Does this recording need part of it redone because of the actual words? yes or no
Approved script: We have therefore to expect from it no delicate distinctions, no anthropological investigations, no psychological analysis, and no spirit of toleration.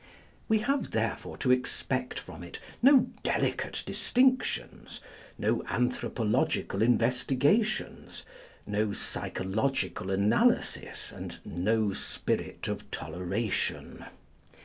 no